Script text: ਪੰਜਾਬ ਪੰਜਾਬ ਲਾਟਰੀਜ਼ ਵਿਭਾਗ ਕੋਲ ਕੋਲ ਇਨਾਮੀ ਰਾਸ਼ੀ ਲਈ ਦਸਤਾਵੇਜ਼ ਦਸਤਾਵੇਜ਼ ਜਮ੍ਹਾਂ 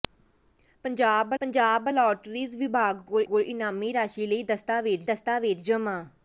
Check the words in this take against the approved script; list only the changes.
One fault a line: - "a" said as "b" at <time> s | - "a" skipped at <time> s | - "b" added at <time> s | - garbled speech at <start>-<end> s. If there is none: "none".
none